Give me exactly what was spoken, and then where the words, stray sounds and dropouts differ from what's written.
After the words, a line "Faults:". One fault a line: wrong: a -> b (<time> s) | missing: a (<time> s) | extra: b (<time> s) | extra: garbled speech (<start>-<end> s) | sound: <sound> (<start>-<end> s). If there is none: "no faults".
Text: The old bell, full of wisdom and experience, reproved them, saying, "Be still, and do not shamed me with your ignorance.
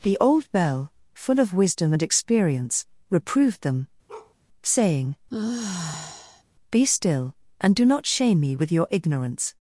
The old bell, full of wisdom and experience, reproved them, saying, "Be still, and do not shame me with your ignorance.
Faults:
sound: bark (4.1-4.4 s)
sound: sigh (5.3-6.4 s)
wrong: shamed -> shame (8.1 s)